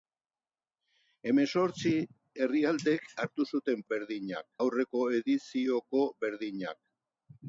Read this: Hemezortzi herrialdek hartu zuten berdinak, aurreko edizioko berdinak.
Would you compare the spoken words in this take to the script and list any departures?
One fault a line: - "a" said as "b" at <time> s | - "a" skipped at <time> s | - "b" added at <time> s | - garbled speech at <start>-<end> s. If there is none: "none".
none